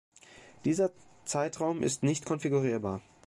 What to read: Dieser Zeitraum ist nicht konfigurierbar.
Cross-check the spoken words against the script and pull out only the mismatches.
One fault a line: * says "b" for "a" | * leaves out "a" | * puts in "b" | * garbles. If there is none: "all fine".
all fine